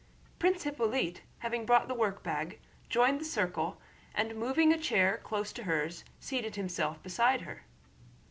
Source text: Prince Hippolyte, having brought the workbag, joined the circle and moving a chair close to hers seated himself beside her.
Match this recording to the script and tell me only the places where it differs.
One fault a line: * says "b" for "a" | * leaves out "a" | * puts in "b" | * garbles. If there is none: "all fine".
all fine